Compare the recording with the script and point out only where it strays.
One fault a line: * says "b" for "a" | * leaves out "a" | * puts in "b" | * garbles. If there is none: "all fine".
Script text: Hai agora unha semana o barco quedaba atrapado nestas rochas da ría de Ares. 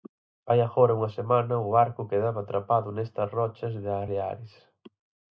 * leaves out "ría"